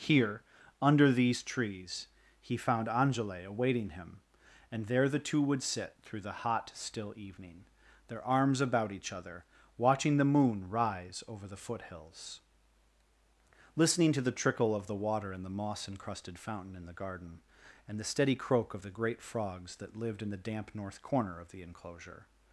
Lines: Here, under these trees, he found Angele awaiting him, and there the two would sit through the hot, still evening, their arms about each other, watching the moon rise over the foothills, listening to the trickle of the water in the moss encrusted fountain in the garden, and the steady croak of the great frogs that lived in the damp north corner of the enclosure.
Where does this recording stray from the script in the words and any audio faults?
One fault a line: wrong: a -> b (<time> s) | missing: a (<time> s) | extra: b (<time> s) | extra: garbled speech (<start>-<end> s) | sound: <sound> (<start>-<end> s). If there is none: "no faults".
no faults